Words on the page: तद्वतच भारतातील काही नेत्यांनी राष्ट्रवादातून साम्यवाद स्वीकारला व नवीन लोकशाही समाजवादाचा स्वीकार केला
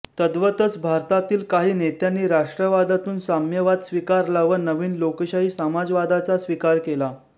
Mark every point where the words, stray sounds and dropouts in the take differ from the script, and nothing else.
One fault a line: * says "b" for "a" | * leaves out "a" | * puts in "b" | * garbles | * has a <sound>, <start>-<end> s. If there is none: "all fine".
all fine